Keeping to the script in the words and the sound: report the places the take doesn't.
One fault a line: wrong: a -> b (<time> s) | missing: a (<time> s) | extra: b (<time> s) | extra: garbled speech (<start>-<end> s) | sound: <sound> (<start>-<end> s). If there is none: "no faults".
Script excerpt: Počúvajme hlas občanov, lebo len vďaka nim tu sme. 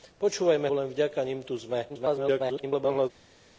missing: hlas občanov lebo (0.7 s)
extra: garbled speech (1.9-3.1 s)